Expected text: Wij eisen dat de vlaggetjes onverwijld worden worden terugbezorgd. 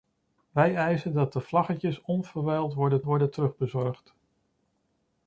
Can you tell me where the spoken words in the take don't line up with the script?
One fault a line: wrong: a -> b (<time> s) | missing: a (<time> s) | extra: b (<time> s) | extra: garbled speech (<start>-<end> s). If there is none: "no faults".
no faults